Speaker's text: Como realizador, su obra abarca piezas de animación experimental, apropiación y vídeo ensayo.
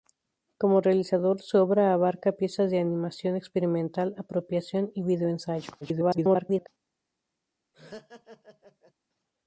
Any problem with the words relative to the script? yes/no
yes